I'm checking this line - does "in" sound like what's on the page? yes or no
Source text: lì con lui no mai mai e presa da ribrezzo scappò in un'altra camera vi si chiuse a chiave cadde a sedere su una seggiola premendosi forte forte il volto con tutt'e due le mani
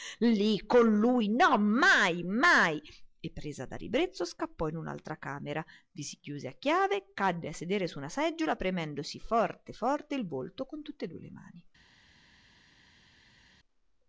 yes